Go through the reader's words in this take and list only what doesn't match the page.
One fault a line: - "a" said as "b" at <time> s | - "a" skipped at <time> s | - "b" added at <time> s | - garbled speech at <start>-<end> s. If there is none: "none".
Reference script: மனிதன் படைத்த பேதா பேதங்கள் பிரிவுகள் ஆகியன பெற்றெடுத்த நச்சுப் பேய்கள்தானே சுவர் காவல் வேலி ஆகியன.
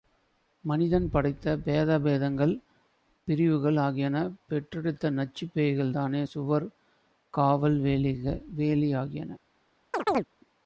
none